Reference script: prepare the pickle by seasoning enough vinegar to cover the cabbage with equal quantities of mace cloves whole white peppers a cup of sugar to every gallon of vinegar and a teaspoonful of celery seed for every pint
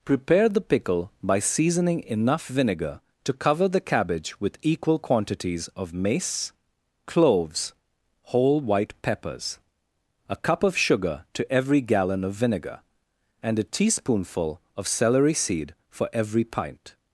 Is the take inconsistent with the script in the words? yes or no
no